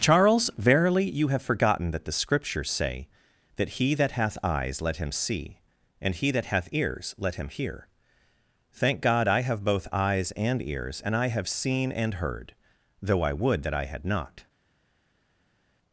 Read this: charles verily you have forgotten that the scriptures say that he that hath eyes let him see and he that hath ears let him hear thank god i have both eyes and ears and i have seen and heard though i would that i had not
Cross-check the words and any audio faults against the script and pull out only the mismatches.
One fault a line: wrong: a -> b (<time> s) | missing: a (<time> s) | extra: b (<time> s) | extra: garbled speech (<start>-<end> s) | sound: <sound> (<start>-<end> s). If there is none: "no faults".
no faults